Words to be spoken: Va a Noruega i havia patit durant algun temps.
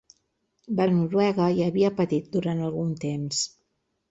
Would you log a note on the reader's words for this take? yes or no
no